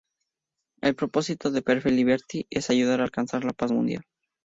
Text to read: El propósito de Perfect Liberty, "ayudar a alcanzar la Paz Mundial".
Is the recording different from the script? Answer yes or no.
yes